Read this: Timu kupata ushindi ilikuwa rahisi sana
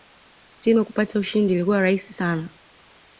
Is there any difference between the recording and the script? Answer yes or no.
no